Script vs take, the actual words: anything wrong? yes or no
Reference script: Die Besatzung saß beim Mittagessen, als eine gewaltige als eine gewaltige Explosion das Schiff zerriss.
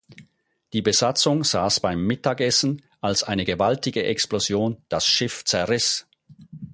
yes